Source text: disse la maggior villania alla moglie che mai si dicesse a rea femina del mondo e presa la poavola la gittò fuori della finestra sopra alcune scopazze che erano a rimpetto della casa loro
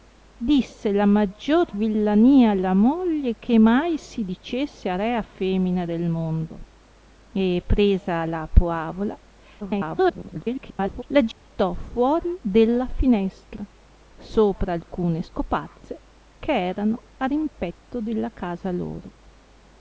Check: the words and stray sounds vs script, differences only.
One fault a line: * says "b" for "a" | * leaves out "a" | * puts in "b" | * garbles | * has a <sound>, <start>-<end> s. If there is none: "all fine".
* garbles
* has a dropout, 11.3-11.4 s